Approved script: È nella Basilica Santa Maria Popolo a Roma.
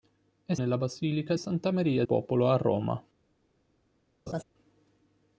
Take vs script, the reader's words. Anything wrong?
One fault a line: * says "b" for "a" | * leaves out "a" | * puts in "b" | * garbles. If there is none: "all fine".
all fine